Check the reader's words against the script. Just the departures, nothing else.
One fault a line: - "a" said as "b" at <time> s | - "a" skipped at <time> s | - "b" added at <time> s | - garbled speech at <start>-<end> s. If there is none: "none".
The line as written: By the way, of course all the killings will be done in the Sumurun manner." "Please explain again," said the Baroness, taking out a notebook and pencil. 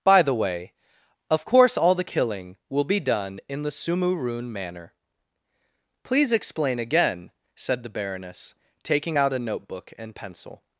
- "killings" said as "killing" at 2.0 s